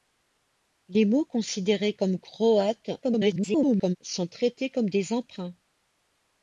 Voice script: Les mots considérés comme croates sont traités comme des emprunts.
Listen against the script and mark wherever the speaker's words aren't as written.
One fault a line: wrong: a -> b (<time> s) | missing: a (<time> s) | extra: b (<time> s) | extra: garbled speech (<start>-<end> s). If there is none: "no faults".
extra: garbled speech (3.0-4.0 s)